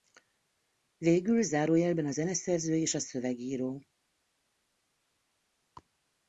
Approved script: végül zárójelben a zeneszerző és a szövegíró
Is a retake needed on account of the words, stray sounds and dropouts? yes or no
no